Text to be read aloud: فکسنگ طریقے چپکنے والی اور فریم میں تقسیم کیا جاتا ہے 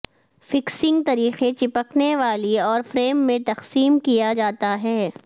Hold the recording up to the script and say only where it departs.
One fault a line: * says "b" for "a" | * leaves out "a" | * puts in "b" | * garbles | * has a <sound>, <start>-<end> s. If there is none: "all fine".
all fine